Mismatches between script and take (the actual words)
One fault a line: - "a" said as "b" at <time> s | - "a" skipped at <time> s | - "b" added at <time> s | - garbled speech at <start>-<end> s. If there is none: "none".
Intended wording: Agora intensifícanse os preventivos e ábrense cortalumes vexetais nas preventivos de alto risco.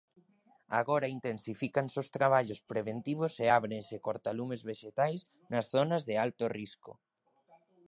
- "traballos" added at 2.2 s
- "preventivos" said as "zonas" at 5.7 s